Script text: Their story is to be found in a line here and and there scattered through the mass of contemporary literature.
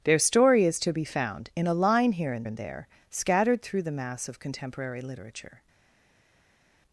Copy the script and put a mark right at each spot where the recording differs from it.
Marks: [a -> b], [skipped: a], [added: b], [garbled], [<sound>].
Their story is to be found in a line here and and there scattered through the mass of contemporary literature.